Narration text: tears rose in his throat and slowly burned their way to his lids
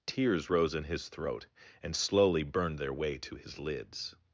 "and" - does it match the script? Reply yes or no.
yes